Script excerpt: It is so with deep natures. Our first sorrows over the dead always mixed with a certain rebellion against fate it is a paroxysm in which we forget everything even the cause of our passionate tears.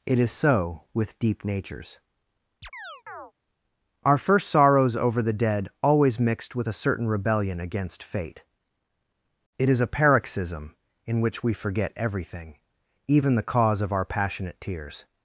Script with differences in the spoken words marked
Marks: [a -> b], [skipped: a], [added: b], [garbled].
It is so with deep natures. Our first sorrows over the dead always mixed with a certain rebellion against fate it is a paroxysm in which we forget everything even the cause of our passionate tears.